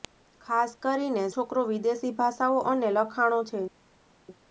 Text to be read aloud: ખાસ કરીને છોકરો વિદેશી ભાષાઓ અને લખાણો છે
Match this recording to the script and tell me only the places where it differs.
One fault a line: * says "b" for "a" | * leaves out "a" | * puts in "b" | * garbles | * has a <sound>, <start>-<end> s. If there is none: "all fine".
all fine